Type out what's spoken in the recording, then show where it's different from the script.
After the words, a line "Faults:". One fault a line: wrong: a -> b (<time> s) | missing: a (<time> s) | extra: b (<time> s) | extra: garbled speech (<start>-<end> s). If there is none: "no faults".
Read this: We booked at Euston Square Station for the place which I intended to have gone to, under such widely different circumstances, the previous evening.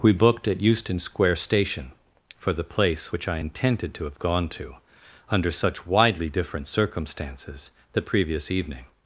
We booked at Euston Square Station for the place which I intended to have gone to, under such widely different circumstances, the previous evening.
Faults:
no faults